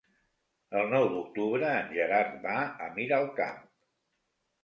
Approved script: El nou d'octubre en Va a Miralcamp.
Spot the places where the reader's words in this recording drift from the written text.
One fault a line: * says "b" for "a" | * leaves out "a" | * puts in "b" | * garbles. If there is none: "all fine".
* puts in "Gerard"